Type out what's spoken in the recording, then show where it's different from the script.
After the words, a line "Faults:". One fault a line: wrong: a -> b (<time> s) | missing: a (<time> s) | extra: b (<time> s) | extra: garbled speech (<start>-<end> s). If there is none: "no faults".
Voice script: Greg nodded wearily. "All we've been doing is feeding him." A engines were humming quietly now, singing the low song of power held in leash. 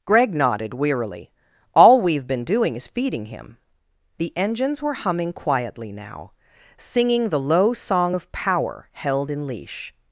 Greg nodded wearily. "All we've been doing is feeding him." The engines were humming quietly now, singing the low song of power held in leash.
Faults:
wrong: A -> The (4.2 s)